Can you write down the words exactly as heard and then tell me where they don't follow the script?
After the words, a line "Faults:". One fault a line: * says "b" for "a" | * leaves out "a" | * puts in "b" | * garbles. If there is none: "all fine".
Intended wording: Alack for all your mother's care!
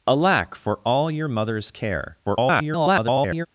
Alack for all your mother's care! [garbled]
Faults:
* garbles